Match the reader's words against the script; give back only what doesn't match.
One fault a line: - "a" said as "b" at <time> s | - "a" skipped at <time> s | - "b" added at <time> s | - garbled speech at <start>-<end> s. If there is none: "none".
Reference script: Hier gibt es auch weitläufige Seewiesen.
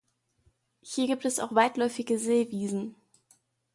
none